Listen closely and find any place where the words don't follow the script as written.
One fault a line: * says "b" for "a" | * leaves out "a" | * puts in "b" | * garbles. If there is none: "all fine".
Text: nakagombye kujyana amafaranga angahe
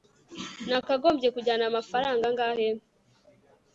all fine